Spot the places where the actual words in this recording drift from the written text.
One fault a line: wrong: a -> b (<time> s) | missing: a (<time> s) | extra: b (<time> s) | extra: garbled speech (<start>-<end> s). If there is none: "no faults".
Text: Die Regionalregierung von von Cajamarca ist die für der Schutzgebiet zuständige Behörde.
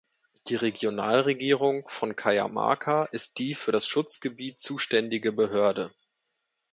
missing: von (2.1 s)
wrong: der -> das (3.7 s)